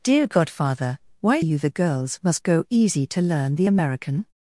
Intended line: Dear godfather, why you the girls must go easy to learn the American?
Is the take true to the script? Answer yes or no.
yes